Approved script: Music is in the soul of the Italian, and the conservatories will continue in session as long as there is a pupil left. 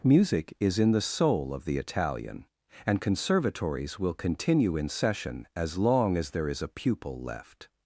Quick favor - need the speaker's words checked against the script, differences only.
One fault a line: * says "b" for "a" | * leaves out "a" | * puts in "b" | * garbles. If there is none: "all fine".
* leaves out "the"